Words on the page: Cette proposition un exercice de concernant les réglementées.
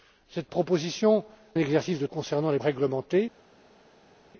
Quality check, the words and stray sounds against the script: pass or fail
pass